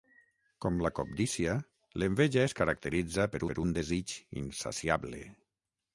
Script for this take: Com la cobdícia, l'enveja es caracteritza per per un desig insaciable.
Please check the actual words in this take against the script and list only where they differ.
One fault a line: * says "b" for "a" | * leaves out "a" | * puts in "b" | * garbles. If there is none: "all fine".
all fine